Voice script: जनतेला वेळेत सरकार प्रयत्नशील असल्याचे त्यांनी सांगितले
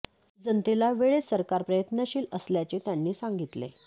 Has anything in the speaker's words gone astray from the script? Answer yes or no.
no